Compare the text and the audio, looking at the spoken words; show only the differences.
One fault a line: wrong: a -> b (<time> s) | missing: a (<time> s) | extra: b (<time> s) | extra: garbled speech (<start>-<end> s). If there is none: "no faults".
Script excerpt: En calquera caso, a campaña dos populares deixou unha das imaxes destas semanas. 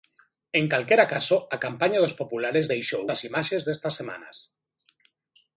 missing: unha (3.0 s)